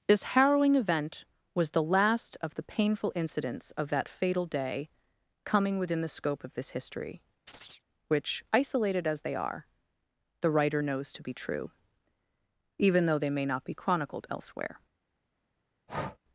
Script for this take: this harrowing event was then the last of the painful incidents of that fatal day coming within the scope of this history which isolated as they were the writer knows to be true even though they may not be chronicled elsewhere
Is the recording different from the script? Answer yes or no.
yes